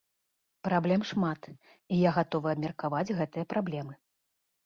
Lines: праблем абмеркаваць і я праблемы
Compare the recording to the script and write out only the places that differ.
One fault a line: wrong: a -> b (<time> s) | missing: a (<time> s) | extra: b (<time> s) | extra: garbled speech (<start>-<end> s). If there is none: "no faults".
wrong: абмеркаваць -> шмат (1.1 s)
extra: гатовы абмеркаваць гэтыя (2.2 s)